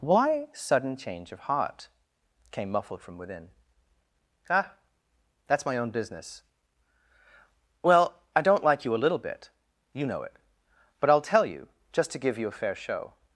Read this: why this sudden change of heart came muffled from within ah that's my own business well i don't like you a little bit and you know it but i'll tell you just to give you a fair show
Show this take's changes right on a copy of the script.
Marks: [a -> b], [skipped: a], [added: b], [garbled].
why [skipped: this] sudden change of heart came muffled from within ah that's my own business well i don't like you a little bit [skipped: and] you know it but i'll tell you just to give you a fair show